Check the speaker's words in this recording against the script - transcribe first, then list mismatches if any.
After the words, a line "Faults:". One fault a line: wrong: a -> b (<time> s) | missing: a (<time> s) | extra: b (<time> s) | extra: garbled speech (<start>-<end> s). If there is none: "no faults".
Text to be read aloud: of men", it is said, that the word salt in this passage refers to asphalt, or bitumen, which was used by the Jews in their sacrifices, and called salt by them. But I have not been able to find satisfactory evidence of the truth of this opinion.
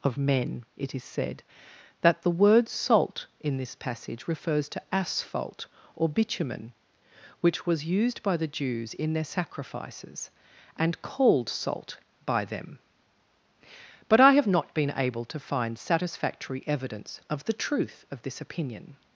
of men", it is said, that the word salt in this passage refers to asphalt, or bitumen, which was used by the Jews in their sacrifices, and called salt by them. But I have not been able to find satisfactory evidence of the truth of this opinion.
Faults:
no faults